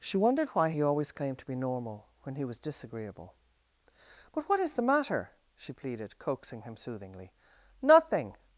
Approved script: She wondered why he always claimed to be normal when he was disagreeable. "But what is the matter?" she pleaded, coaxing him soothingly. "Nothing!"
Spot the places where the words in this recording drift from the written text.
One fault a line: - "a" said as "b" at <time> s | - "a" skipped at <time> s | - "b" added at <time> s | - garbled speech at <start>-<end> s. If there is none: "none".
none